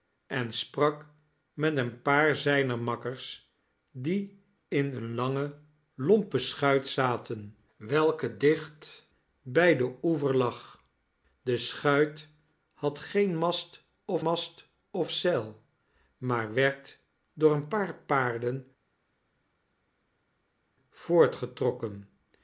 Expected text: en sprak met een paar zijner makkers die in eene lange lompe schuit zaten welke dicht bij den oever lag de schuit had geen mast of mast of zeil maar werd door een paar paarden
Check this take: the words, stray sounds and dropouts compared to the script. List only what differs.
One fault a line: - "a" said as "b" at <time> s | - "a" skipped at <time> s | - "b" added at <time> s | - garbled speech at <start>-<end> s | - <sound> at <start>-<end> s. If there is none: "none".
none